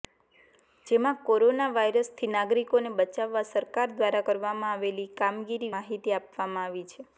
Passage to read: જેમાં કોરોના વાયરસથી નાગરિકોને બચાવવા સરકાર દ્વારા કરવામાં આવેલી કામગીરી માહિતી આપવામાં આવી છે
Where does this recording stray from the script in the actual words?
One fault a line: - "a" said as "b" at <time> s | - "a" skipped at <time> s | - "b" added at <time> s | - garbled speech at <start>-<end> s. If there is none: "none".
none